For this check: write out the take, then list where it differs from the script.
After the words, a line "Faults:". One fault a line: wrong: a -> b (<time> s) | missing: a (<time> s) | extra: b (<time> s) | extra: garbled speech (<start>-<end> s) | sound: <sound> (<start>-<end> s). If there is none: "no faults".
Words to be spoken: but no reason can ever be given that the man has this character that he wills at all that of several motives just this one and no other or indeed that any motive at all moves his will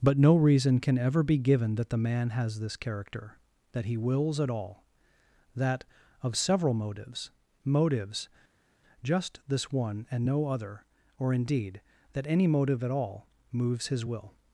but no reason can ever be given that the man has this character that he wills at all that of several motives motives just this one and no other or indeed that any motive at all moves his will
Faults:
extra: motives (7.6 s)